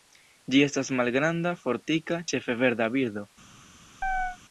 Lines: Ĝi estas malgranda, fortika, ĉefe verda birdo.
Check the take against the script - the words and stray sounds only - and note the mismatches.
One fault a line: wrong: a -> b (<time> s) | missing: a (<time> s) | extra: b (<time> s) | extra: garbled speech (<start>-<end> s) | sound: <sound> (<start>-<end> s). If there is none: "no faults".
sound: chirp (4.0-4.4 s)